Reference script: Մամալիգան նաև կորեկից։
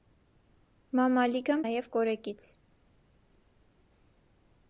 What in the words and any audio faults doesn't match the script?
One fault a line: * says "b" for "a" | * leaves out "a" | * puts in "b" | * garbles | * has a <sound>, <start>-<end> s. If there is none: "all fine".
all fine